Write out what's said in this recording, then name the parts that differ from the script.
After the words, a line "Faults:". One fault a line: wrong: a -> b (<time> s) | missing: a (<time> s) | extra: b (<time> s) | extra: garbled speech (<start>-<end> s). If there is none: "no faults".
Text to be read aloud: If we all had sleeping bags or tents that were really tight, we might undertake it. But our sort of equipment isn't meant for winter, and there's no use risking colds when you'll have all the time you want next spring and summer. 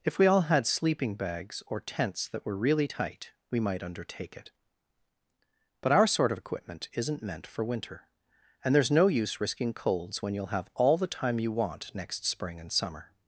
If we all had sleeping bags or tents that were really tight, we might undertake it. But our sort of equipment isn't meant for winter, and there's no use risking colds when you'll have all the time you want next spring and summer.
Faults:
no faults